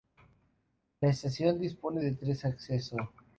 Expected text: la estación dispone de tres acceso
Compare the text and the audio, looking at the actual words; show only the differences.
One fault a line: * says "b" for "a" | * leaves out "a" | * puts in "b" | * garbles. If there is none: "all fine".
all fine